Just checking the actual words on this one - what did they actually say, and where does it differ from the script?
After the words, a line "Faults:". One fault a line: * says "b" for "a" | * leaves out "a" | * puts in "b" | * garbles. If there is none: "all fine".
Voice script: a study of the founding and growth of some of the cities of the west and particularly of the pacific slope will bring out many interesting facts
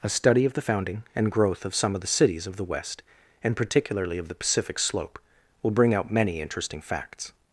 a study of the founding and growth of some of the cities of the west and particularly of the pacific slope will bring out many interesting facts
Faults:
all fine